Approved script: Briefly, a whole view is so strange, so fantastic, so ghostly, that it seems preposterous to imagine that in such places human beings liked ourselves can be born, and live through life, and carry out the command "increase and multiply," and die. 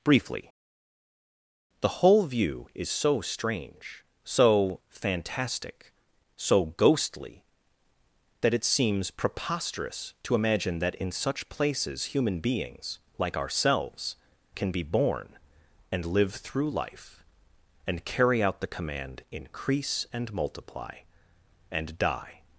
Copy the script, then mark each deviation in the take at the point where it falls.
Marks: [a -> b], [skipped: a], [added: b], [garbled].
Briefly, [a -> the] whole view is so strange, so fantastic, so ghostly, that it seems preposterous to imagine that in such places human beings [liked -> like] ourselves can be born, and live through life, and carry out the command "increase and multiply," and die.